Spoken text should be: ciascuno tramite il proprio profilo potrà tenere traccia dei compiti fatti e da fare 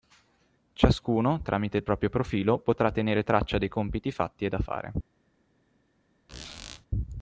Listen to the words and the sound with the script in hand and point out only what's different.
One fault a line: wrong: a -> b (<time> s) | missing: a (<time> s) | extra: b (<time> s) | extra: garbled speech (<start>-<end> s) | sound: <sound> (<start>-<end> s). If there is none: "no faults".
sound: squeak (6.3-6.9 s)